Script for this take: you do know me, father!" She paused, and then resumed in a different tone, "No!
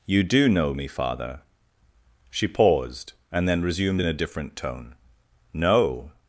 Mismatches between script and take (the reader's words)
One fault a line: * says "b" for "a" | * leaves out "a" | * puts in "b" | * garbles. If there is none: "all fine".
all fine